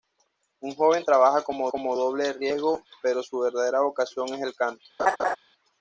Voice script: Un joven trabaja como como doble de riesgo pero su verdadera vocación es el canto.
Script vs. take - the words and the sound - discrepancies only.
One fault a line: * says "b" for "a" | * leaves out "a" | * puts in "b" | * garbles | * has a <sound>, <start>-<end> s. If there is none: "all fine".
* has a laugh, 5.0-5.4 s